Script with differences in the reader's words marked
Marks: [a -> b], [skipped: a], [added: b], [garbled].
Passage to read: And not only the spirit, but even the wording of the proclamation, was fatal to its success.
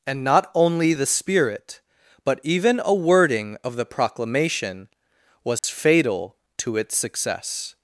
And not only the spirit, but even [the -> a] wording of the proclamation, was fatal to its success.